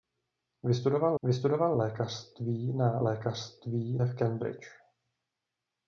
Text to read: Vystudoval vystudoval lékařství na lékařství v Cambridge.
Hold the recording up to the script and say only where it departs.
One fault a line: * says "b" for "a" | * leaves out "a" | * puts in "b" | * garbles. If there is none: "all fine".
all fine